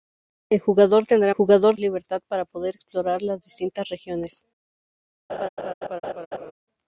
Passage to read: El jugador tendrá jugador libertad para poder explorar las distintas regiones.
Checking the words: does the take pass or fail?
pass